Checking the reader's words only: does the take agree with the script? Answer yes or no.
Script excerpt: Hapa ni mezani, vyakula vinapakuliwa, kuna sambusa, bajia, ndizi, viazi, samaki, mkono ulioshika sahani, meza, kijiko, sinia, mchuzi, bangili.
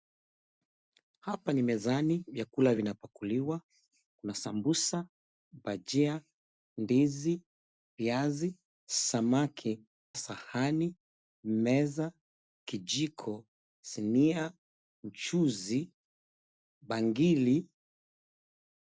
no